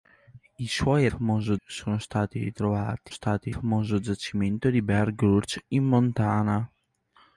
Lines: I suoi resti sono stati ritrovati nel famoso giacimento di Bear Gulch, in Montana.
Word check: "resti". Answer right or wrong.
wrong